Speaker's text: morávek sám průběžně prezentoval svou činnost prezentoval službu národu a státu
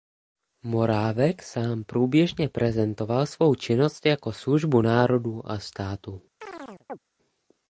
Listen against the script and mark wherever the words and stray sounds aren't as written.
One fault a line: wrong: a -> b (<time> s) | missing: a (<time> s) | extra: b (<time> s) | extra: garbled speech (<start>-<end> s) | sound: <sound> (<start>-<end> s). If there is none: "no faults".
wrong: prezentoval -> jako (4.1 s)
sound: chirp (6.4-7.0 s)